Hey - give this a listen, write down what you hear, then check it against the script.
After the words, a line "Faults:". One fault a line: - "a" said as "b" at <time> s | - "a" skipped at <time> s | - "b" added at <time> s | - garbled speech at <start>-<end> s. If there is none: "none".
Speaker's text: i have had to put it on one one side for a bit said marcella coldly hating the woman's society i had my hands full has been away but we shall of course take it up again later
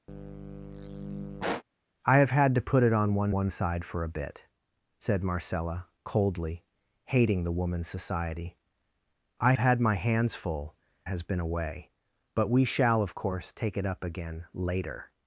i have had to put it on one one side for a bit said marcella coldly hating the woman's society i had my hands full has been away but we shall of course take it up again later
Faults:
none